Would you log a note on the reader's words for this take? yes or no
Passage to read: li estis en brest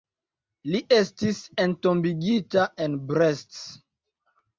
yes